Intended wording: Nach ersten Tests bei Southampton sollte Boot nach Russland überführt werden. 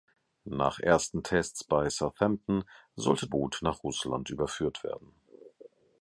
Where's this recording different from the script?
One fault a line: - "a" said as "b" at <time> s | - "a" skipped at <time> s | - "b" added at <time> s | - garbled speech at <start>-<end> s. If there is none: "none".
none